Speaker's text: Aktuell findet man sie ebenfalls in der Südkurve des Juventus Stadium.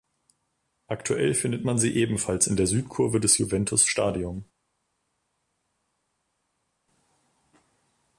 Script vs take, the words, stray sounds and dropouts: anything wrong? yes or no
no